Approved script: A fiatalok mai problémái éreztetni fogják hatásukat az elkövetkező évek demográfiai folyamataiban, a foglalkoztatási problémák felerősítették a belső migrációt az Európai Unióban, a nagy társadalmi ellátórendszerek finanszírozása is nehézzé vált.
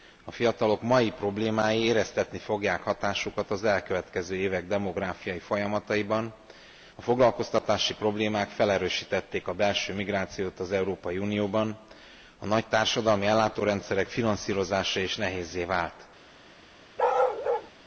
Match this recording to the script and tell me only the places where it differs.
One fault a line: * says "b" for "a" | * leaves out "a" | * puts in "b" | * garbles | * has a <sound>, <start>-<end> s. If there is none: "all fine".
* has a bark, 17.0-17.7 s